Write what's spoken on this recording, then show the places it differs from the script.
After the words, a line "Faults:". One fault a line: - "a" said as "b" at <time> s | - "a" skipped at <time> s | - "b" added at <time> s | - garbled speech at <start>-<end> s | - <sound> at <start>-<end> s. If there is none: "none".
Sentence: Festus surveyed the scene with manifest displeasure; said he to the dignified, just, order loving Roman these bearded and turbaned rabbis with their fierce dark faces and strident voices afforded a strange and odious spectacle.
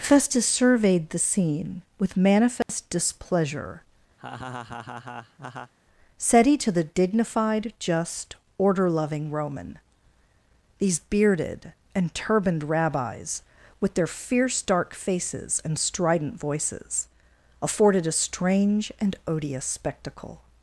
Festus surveyed the scene with manifest displeasure; said he to the dignified, just, order loving Roman these bearded and turbaned rabbis with their fierce dark faces and strident voices afforded a strange and odious spectacle.
Faults:
- dropout at 2.6-2.7 s
- laugh at 4.2-5.7 s